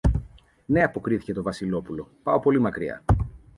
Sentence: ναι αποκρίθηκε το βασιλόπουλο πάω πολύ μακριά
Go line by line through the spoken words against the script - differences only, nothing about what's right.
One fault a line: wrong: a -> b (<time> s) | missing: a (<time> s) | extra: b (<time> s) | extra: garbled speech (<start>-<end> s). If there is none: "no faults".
no faults